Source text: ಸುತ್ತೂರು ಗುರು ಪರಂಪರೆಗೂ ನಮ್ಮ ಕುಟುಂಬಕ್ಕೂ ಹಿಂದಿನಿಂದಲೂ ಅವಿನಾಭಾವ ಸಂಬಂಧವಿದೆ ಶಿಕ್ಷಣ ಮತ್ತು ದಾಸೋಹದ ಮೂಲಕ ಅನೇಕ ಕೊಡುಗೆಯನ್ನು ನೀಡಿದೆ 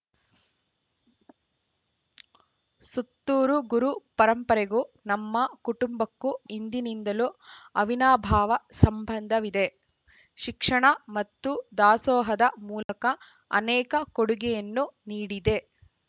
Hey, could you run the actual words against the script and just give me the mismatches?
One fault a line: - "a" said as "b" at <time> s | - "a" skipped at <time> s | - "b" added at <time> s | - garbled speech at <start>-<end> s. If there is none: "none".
none